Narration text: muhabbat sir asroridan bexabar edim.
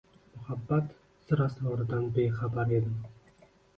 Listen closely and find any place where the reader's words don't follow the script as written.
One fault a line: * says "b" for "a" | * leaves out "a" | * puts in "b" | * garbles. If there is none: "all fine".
all fine